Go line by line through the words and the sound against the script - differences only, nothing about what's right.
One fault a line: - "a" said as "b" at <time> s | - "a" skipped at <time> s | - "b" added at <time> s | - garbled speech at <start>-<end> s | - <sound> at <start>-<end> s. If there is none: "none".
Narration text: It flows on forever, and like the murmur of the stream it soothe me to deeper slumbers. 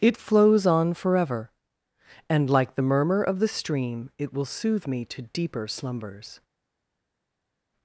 - "will" added at 4.3 s